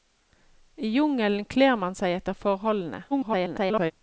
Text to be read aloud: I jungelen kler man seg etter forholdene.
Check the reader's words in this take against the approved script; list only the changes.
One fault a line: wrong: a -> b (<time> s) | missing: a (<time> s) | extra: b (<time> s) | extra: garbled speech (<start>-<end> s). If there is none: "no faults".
extra: garbled speech (3.1-3.9 s)